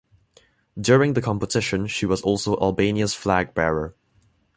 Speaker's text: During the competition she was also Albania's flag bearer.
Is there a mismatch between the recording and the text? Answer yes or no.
no